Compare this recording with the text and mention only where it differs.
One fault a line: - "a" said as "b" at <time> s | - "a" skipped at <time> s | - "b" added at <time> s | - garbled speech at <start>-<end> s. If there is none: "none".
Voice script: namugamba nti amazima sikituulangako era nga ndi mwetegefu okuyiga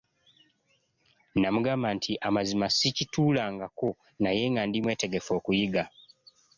- "era" said as "naye" at 4.2 s